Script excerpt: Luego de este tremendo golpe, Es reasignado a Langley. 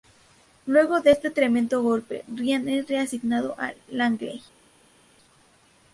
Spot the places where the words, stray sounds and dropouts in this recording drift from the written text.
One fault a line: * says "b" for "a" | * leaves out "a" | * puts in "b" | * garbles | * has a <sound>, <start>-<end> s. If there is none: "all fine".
* puts in "Ryan"